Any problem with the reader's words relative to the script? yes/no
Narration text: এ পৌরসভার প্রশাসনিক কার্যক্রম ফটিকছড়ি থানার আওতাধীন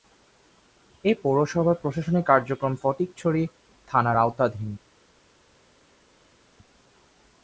no